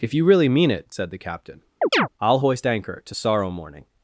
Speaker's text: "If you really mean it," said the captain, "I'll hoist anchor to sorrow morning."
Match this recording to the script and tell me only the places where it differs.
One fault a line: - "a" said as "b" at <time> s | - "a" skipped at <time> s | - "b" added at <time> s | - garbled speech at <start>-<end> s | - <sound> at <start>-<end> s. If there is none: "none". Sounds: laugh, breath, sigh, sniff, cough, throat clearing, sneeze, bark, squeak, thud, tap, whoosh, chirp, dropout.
- chirp at 1.8-2.1 s